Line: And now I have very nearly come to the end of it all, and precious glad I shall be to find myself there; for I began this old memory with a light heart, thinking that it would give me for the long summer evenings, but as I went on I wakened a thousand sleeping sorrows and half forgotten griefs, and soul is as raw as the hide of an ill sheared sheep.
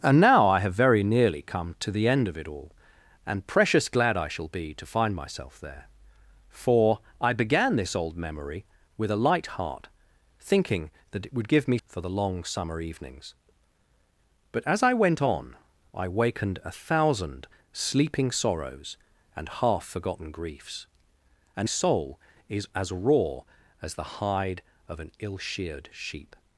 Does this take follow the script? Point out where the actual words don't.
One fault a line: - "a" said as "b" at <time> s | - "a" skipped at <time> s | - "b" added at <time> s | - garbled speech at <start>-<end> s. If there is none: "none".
none